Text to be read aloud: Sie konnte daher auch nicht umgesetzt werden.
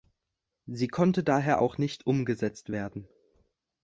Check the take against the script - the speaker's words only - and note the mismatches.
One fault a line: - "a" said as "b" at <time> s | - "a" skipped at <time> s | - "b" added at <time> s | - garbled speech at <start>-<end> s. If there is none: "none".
none